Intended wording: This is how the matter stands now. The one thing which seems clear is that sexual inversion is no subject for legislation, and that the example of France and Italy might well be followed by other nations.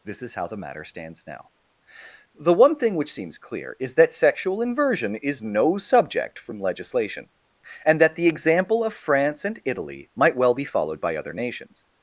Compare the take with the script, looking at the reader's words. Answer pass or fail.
fail